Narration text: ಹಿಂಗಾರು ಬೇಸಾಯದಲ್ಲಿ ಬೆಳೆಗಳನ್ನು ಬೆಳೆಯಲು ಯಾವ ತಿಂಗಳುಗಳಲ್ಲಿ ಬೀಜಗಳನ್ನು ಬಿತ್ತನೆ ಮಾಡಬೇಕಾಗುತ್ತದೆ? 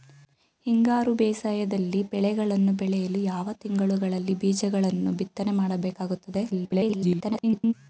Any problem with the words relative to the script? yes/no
yes